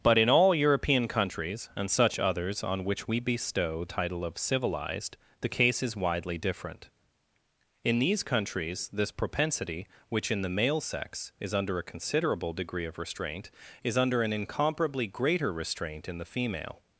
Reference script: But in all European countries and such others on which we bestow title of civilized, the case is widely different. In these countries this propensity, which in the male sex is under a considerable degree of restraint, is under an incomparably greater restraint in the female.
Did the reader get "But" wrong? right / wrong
right